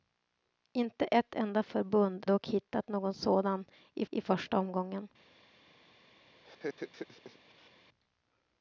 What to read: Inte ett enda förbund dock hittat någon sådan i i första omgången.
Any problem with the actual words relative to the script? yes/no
no